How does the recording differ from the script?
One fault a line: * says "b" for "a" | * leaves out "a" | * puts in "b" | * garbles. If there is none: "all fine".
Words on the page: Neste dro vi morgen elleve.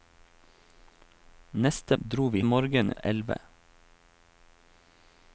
all fine